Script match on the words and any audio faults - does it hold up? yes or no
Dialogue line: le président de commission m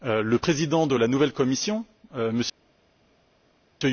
no